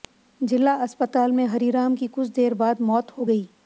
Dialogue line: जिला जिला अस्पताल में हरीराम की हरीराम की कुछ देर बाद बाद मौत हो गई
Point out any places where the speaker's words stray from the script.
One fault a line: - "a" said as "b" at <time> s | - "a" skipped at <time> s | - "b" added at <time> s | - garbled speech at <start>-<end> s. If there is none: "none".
- "जिला" skipped at 0.7 s
- "हरीराम की" skipped at 2.1 s
- "बाद" skipped at 2.8 s